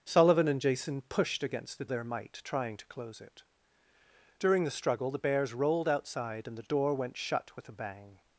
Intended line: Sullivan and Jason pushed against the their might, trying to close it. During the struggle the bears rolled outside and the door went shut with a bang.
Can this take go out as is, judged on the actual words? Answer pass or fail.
pass